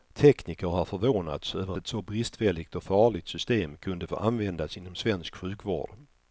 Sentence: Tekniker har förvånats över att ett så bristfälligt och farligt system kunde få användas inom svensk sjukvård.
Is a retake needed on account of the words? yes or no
yes